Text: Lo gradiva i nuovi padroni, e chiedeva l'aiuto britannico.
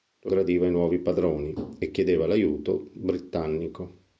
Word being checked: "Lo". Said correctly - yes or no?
yes